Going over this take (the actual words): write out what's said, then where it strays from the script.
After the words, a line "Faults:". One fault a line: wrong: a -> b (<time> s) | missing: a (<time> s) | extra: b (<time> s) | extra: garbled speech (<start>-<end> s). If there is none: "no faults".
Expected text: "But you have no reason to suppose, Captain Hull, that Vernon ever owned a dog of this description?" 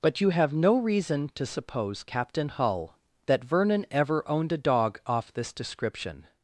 "But you have no reason to suppose, Captain Hull, that Vernon ever owned a dog off this description?"
Faults:
wrong: of -> off (5.1 s)